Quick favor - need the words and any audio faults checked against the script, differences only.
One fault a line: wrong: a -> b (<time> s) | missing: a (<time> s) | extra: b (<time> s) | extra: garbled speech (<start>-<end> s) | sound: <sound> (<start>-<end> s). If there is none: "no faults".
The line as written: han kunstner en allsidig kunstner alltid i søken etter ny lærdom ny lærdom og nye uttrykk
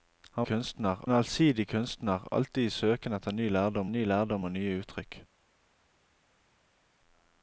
no faults